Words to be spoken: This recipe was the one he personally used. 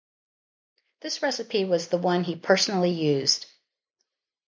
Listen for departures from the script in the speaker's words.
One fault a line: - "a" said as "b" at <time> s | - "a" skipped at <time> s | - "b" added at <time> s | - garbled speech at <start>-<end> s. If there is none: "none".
none